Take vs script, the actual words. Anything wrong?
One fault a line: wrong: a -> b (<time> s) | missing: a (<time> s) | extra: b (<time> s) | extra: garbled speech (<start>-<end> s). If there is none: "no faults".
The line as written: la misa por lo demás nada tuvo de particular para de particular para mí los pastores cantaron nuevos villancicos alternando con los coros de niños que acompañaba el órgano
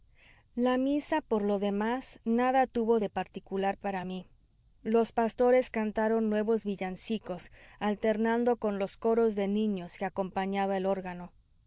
missing: de particular para (4.1 s)